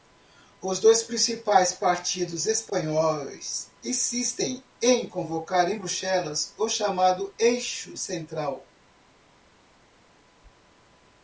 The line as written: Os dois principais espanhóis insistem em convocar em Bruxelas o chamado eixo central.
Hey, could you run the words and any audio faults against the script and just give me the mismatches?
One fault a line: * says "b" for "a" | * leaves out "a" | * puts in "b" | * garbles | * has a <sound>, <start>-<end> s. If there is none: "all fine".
* puts in "partidos"